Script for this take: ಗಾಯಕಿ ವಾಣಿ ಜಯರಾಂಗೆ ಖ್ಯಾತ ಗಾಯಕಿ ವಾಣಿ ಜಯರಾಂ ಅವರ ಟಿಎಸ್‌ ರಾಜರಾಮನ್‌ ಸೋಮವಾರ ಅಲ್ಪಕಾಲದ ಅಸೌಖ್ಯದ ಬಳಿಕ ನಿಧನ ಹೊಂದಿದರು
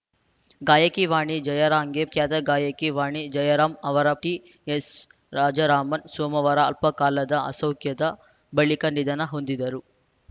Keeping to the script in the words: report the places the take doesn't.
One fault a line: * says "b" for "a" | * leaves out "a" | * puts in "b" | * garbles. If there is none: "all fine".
all fine